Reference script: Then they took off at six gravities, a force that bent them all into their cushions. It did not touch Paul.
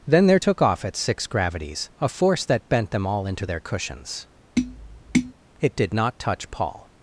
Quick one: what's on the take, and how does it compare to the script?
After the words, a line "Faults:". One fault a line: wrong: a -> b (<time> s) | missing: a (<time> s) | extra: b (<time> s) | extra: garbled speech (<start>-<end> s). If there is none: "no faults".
Then there took off at six gravities, a force that bent them all into their cushions. It did not touch Paul.
Faults:
wrong: they -> there (0.3 s)